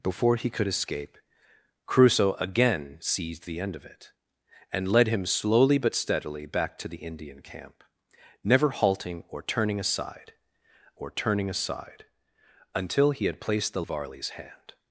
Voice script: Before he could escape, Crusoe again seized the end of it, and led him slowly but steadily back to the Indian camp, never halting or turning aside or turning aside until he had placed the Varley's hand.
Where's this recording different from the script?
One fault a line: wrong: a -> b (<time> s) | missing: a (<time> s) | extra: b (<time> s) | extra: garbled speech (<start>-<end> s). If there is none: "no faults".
no faults